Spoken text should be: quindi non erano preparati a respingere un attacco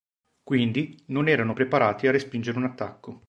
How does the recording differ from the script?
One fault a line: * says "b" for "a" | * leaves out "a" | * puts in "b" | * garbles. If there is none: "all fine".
all fine